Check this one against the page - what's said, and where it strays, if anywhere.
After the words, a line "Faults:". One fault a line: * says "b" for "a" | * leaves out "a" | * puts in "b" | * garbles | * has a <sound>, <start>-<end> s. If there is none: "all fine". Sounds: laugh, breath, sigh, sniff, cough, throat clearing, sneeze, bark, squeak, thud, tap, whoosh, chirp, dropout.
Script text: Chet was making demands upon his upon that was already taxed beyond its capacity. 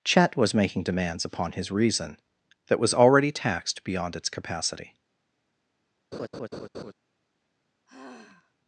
Chet was making demands upon his reason that was already taxed beyond its capacity.
Faults:
* says "reason" for "upon"
* has a laugh, 6.1-6.9 s
* has a sigh, 7.9-8.5 s